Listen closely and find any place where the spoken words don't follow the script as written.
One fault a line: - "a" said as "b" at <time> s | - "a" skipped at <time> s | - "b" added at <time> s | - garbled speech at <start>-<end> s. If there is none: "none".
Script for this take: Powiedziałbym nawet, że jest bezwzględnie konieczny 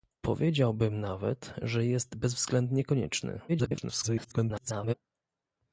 - garbled speech at 3.5-4.9 s